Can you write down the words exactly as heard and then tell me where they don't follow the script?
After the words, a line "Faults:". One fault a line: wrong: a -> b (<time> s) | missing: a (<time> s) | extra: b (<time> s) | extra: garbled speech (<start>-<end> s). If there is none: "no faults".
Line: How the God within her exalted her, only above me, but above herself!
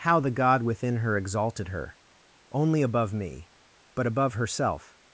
How the God within her exalted her, only above me, but above herself!
Faults:
no faults